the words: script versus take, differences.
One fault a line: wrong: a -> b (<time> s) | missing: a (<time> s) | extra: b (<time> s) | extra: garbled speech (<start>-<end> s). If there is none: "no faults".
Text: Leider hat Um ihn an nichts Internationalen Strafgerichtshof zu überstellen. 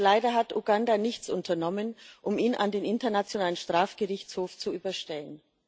extra: Uganda nichts unternommen (0.6 s)
wrong: nichts -> den (2.7 s)